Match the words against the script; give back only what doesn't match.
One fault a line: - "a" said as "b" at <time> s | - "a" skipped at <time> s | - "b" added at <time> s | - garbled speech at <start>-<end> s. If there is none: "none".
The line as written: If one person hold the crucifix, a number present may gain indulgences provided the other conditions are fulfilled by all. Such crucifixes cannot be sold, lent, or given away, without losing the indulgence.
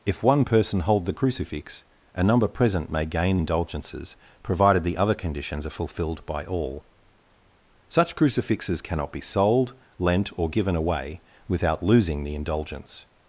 none